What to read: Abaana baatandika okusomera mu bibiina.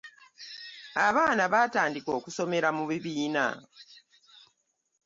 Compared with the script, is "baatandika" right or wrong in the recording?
right